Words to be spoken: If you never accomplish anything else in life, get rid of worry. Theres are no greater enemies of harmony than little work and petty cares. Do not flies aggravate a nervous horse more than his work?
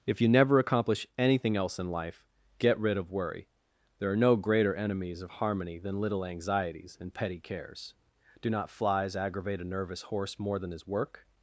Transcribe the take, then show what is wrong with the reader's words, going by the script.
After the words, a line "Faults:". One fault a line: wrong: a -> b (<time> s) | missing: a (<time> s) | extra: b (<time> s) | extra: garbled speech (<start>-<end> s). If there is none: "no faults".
If you never accomplish anything else in life, get rid of worry. There are no greater enemies of harmony than little anxieties and petty cares. Do not flies aggravate a nervous horse more than his work?
Faults:
wrong: Theres -> There (4.0 s)
wrong: work -> anxieties (6.2 s)